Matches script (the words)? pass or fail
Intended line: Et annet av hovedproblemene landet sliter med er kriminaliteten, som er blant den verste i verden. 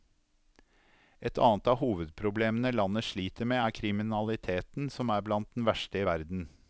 pass